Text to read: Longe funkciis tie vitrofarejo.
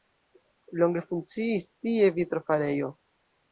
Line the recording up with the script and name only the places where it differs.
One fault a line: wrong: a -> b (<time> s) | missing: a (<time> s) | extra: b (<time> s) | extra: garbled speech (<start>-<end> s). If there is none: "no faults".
no faults